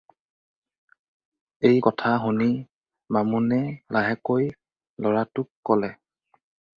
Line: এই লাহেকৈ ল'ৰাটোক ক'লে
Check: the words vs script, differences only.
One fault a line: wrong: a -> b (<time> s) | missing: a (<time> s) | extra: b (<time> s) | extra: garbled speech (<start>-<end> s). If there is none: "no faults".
extra: কথা শুনি বামুণে (1.8 s)